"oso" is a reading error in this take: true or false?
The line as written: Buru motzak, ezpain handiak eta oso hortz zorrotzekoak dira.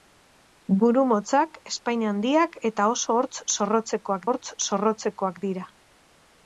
false